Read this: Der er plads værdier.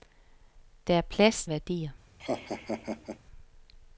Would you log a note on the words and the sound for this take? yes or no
yes